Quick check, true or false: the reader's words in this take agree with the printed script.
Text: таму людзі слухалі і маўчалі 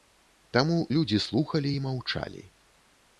true